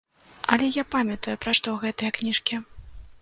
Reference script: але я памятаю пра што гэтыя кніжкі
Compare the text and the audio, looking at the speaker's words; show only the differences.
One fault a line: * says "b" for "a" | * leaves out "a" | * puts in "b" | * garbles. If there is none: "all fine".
all fine